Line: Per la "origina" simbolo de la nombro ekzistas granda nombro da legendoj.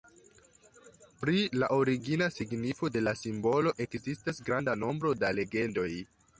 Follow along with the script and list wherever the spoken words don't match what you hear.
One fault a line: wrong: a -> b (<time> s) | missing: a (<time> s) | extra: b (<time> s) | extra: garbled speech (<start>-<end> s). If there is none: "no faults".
wrong: Per -> Pri (1.2 s)
wrong: simbolo -> signifo (2.4 s)
wrong: nombro -> simbolo (3.2 s)